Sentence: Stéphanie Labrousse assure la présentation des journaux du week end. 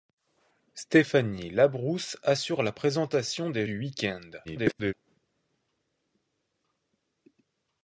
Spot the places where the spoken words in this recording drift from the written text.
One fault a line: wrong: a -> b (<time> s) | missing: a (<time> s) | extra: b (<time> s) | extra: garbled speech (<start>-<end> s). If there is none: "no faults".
missing: journaux (3.7 s)
extra: garbled speech (4.4-4.9 s)